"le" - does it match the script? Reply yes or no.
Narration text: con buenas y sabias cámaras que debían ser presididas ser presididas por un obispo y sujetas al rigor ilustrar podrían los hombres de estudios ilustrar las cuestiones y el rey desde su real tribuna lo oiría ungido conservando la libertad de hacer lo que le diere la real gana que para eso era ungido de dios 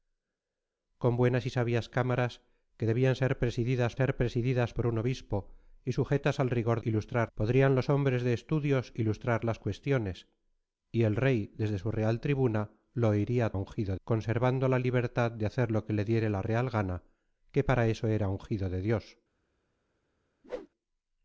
yes